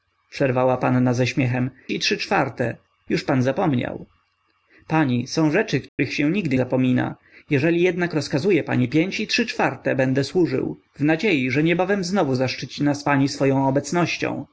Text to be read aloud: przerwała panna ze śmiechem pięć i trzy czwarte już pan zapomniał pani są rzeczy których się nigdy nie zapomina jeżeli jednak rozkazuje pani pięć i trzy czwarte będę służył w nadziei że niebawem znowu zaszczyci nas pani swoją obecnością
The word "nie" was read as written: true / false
false